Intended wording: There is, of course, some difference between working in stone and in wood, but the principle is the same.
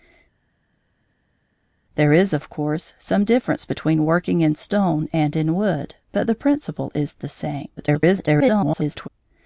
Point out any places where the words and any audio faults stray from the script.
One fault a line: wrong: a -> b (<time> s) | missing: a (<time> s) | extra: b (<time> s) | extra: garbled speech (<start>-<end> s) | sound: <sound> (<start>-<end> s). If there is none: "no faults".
extra: garbled speech (7.8-9.1 s)